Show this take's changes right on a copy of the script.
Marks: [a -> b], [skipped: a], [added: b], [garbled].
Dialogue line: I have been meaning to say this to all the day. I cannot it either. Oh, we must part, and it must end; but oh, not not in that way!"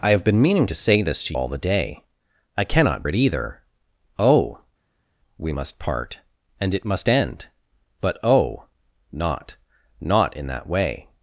I have been meaning to say this to all the day. I cannot it either. Oh, we must part, and it must end; but oh, not not in that way!"